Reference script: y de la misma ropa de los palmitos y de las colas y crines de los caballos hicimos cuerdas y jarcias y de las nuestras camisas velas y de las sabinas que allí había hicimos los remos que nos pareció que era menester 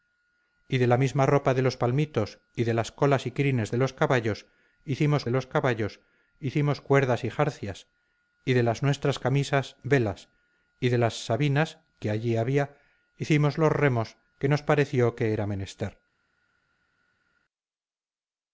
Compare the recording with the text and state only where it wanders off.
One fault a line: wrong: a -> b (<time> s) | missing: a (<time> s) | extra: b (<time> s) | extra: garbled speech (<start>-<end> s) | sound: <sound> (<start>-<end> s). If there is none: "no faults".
extra: los caballos hicimos (5.3 s)